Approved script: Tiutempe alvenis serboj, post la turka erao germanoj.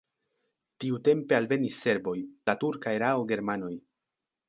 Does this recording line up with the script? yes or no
no